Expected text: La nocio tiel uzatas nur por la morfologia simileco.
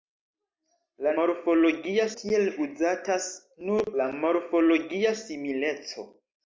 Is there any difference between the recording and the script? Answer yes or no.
yes